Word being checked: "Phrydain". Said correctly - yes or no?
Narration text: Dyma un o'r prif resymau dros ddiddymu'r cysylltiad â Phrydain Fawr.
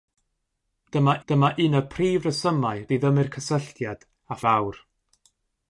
no